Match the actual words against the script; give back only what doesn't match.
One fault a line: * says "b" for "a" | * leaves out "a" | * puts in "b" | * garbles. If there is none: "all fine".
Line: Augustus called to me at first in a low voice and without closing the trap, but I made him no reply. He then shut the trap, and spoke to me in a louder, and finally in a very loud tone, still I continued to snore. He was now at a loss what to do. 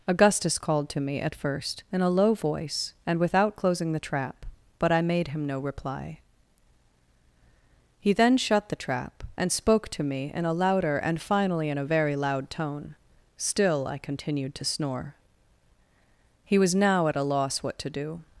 all fine